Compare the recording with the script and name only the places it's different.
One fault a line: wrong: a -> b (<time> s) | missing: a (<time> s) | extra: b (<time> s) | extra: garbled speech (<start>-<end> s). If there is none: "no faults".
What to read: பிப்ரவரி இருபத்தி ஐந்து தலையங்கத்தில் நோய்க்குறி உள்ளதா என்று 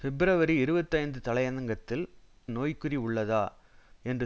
no faults